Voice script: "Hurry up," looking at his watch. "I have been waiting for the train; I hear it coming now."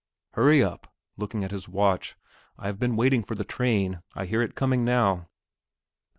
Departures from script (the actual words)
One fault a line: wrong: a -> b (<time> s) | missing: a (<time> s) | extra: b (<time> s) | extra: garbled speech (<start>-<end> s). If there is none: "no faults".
no faults